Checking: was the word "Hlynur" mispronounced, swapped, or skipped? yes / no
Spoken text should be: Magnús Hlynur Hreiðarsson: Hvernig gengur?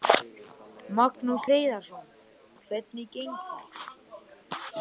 yes